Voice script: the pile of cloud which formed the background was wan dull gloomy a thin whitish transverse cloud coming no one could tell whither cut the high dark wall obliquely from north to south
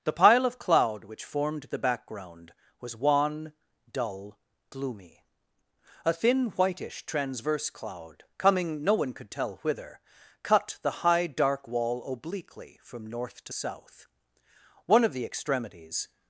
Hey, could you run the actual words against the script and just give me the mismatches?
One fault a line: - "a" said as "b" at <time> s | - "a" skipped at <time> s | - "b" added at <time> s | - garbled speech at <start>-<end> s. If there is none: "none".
- "one of the extremities" added at 14.9 s